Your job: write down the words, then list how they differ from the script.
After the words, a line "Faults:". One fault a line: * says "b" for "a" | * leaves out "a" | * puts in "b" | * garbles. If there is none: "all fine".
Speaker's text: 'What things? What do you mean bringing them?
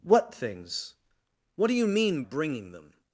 'What things? What do you mean bringing them?
Faults:
all fine